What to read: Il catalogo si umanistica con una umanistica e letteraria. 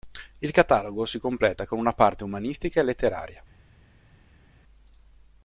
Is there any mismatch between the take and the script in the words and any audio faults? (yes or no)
yes